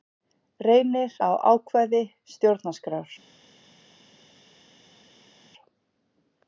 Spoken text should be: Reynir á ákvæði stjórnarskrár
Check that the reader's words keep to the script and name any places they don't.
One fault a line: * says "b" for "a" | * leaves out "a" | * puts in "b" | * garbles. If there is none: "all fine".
all fine